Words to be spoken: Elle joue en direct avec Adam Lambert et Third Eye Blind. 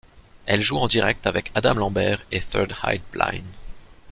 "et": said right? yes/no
yes